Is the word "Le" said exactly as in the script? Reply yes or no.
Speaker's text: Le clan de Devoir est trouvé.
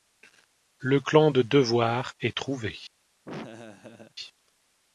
yes